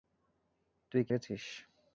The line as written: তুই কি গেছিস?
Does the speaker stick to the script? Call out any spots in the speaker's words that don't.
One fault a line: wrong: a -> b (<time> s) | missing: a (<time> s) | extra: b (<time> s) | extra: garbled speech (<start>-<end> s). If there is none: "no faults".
no faults